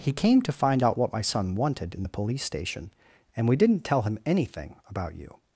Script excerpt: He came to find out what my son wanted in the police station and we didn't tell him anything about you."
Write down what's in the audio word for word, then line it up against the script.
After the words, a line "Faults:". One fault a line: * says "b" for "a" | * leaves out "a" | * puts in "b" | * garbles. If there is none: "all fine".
He came to find out what my son wanted in the police station and we didn't tell him anything about you."
Faults:
all fine